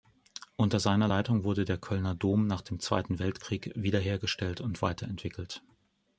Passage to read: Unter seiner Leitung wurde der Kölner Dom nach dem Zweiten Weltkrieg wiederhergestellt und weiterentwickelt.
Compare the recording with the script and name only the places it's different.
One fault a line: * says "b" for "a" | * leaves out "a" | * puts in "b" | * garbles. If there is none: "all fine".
all fine